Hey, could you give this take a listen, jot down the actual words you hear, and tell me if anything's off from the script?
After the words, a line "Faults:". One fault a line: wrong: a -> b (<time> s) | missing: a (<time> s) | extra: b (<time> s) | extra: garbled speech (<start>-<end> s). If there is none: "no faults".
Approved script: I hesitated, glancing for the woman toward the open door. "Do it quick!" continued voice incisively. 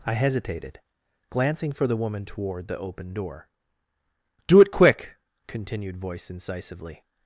I hesitated, glancing for the woman toward the open door. "Do it quick!" continued voice incisively.
Faults:
no faults